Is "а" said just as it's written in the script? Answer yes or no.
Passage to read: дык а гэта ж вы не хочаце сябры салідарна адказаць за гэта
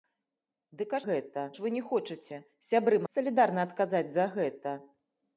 yes